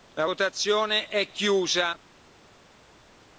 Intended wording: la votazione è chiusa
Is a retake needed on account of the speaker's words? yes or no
no